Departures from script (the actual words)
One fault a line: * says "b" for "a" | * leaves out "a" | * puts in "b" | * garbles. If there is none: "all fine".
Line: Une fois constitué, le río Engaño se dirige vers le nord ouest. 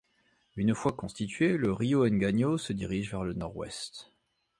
all fine